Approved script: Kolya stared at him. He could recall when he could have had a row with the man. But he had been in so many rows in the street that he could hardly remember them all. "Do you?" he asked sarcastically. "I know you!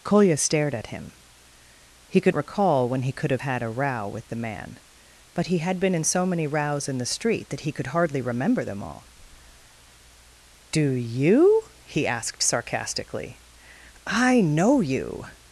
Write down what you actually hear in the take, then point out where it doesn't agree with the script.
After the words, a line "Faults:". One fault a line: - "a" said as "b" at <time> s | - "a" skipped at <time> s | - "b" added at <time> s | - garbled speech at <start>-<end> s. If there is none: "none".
Kolya stared at him. He could recall when he could have had a row with the man. But he had been in so many rows in the street that he could hardly remember them all. "Do you?" he asked sarcastically. "I know you!
Faults:
none